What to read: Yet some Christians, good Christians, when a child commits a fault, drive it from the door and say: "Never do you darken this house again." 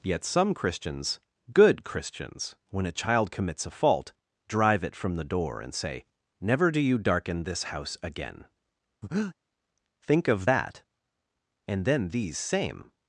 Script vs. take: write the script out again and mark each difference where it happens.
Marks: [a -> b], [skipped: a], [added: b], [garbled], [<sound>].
Yet some Christians, good Christians, when a child commits a fault, drive it from the door and say: "Never do you darken this house again." [breath] [added: Think of that And then these same]